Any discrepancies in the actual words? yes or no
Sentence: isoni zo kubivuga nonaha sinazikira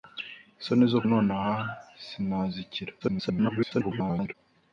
yes